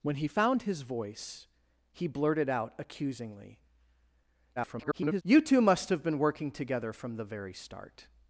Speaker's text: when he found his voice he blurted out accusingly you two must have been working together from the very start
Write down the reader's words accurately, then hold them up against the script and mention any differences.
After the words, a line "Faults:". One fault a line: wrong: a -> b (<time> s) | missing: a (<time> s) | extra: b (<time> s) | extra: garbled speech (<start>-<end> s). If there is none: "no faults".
when he found his voice he blurted out accusingly [garbled] you two must have been working together from the very start
Faults:
extra: garbled speech (4.6-5.2 s)